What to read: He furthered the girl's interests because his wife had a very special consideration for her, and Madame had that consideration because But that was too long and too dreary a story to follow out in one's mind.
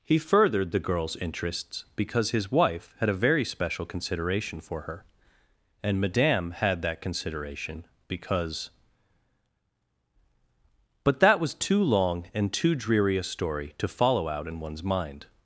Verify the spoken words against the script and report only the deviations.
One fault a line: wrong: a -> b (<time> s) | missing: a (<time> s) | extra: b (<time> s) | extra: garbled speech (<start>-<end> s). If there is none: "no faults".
no faults